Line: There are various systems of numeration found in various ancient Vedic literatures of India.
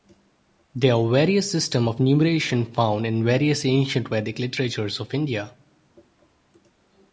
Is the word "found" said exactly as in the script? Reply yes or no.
yes